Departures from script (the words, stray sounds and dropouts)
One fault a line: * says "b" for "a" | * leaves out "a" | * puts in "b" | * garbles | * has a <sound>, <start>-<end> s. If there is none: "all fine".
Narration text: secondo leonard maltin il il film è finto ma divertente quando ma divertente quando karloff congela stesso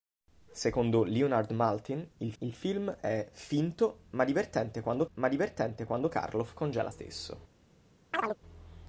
* has a chirp, 8.1-8.4 s